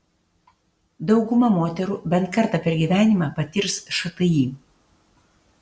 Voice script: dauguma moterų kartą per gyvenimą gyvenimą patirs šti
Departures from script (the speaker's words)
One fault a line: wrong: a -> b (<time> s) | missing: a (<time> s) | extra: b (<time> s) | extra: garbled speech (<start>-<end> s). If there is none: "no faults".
extra: bent (2.1 s)
missing: gyvenimą (3.3 s)